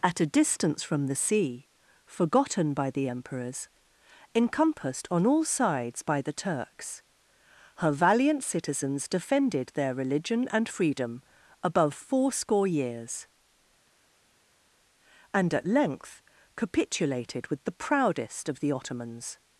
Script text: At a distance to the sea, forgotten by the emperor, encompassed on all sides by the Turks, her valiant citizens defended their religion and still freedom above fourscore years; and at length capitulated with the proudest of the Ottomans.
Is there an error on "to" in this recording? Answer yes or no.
yes